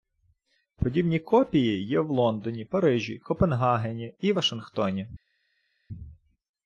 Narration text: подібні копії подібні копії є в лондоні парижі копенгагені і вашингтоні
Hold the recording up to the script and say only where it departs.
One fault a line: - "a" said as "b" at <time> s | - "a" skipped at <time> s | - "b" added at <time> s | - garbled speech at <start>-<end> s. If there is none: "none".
- "подібні копії" skipped at 1.9 s